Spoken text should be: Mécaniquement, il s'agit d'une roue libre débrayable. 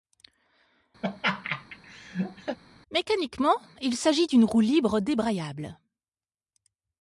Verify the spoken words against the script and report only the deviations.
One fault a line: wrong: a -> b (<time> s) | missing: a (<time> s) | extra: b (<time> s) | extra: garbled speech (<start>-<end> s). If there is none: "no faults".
no faults